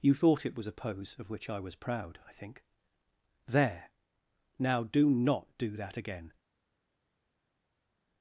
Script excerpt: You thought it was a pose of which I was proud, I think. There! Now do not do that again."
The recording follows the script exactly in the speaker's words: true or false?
true